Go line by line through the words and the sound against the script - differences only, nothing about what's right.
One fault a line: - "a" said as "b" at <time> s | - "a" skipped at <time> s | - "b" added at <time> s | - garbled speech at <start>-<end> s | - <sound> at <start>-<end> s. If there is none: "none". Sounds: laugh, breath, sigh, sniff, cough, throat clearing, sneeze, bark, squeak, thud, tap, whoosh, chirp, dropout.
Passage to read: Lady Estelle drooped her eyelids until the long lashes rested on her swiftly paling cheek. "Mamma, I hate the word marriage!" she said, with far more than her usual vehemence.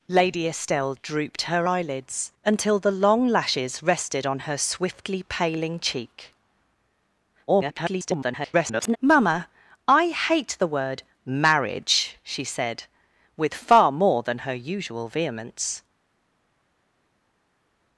- garbled speech at 7.5-9.0 s